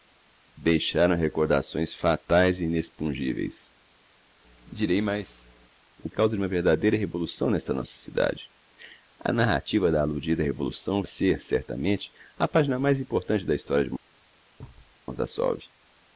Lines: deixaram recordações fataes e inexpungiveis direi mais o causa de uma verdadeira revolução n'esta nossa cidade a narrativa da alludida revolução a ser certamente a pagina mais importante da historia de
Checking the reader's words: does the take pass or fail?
pass